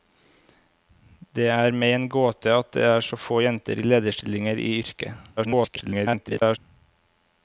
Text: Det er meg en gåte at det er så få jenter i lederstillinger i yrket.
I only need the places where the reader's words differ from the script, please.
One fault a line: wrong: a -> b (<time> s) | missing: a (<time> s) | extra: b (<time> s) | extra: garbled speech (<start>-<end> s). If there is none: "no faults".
extra: garbled speech (5.4-6.6 s)